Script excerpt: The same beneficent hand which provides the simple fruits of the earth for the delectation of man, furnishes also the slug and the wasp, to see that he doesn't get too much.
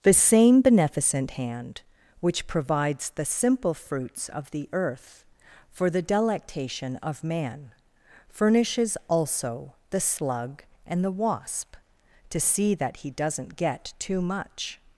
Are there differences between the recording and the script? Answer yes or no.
no